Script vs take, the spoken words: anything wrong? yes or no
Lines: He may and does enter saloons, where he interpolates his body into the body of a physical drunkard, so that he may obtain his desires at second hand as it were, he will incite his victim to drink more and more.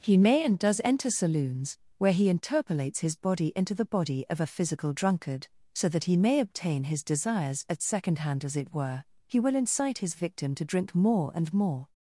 no